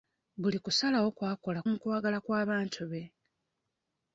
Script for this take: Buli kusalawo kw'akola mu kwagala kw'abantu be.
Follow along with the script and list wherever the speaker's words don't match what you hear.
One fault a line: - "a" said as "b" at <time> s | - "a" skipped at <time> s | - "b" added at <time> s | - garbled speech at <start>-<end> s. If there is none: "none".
none